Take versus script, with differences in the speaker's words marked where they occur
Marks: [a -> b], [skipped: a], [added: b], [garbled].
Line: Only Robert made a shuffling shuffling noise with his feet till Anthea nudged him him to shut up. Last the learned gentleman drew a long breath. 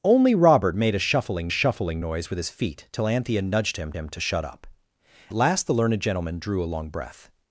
Only Robert made a shuffling shuffling noise with his feet till Anthea nudged him him to shut up. Last the learned gentleman drew a long breath.